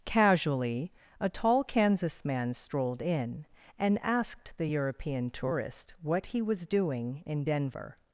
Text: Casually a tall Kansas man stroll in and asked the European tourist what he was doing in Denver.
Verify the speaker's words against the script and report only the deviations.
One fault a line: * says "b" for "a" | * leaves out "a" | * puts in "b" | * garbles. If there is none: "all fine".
* says "strolled" for "stroll"